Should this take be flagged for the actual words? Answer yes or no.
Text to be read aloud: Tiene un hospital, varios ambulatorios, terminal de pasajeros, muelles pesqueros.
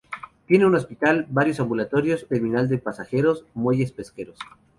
no